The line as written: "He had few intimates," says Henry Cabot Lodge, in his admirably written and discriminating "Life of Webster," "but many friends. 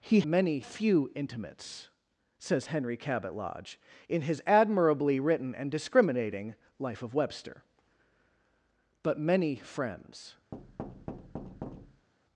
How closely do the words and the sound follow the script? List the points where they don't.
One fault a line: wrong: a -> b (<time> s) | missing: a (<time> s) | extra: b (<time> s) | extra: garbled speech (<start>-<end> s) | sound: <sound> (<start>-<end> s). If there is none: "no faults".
wrong: had -> many (0.2 s)
sound: thud (10.5-12.1 s)